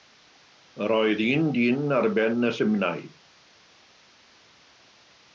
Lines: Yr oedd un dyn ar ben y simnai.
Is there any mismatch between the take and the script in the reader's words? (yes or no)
no